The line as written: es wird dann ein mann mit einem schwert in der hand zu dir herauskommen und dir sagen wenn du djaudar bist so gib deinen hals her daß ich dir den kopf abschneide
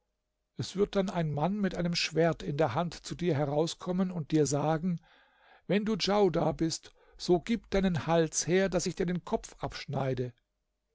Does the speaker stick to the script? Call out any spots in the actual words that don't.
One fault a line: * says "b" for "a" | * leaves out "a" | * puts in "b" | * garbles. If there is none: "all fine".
all fine